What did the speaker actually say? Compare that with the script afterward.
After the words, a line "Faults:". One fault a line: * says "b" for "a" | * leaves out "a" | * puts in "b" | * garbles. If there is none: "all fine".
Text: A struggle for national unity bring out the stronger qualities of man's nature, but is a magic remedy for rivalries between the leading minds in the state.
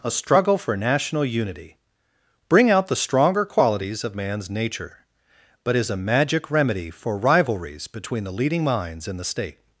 A struggle for national unity bring out the stronger qualities of man's nature, but is a magic remedy for rivalries between the leading minds in the state.
Faults:
all fine